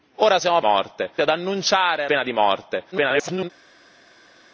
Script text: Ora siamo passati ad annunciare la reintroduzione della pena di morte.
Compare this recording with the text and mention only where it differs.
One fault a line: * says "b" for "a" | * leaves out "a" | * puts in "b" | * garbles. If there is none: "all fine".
* says "morte" for "passati"
* leaves out "la reintroduzione della"
* garbles